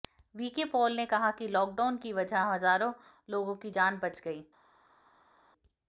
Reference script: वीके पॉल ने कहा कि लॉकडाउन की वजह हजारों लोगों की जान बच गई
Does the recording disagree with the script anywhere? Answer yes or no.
no